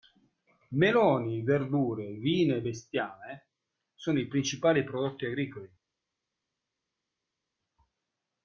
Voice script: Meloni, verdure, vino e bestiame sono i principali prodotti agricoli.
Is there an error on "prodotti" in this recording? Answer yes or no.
no